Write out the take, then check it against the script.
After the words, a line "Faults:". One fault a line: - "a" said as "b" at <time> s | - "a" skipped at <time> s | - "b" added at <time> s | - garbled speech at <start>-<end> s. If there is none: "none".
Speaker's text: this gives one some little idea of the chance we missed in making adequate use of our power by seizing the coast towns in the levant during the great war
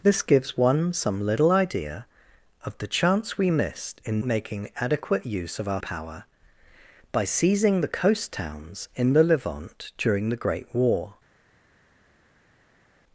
this gives one some little idea of the chance we missed in making adequate use of our power by seizing the coast towns in the levant during the great war
Faults:
none